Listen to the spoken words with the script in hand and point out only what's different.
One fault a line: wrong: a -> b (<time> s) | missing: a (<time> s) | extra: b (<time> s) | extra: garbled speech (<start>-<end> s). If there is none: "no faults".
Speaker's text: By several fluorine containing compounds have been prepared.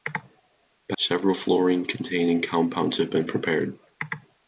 no faults